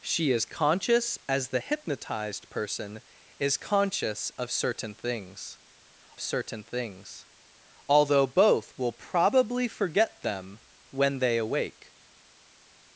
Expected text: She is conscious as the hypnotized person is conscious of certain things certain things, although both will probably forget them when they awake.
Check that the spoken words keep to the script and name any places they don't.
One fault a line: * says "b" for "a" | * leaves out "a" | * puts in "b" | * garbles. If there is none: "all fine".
all fine